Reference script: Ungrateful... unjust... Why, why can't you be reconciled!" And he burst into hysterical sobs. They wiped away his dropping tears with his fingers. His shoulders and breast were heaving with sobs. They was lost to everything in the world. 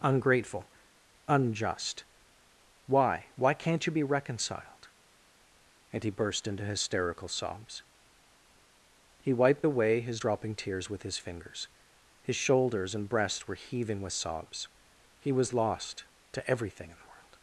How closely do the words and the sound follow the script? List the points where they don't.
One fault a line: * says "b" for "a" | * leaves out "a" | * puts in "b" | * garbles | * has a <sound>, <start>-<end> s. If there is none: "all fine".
* says "He" for "They"
* says "He" for "They"